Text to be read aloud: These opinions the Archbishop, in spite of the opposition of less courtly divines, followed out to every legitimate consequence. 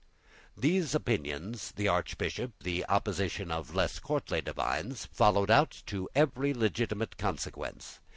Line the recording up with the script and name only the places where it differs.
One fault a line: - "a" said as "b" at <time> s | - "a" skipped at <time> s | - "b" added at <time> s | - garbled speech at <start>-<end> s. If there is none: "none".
- "in spite of" skipped at 2.5 s